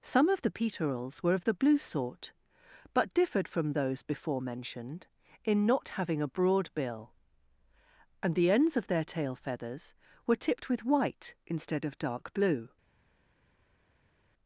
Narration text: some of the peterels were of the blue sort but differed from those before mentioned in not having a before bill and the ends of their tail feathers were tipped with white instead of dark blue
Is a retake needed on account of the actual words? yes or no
yes